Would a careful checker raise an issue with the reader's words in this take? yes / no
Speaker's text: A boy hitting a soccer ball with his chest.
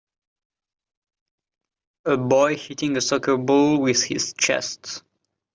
no